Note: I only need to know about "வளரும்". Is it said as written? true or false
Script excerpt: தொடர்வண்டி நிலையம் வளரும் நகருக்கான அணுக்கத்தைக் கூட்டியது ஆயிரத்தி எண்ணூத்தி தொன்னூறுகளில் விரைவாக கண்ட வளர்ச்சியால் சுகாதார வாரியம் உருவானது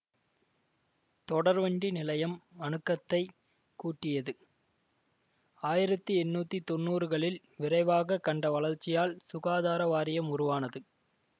false